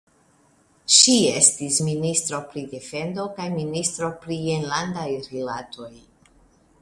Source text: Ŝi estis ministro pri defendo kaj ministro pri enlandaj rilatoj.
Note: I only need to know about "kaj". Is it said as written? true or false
true